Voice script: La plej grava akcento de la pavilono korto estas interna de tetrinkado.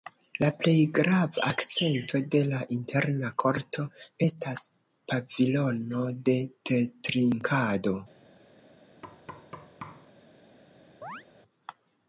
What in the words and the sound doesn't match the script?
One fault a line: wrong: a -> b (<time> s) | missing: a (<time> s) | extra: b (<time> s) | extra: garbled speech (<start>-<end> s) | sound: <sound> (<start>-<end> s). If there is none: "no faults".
wrong: pavilono -> interna (2.8 s)
wrong: interna -> pavilono (5.1 s)
sound: thud (9.0-10.1 s)
sound: chirp (11.0-11.2 s)